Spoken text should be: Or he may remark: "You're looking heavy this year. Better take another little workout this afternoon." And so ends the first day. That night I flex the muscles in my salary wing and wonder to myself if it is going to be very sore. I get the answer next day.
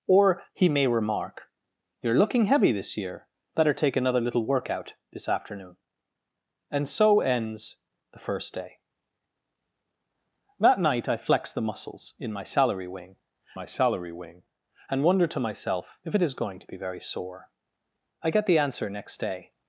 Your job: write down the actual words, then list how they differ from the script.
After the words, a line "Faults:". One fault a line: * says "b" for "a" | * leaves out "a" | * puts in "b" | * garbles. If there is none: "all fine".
Or he may remark: "You're looking heavy this year. Better take another little workout this afternoon." And so ends the first day. That night I flex the muscles in my salary wing my salary wing and wonder to myself if it is going to be very sore. I get the answer next day.
Faults:
* puts in "my salary wing"